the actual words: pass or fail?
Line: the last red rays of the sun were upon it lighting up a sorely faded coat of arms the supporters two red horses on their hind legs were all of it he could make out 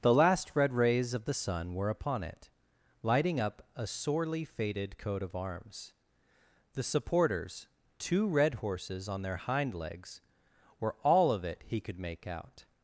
pass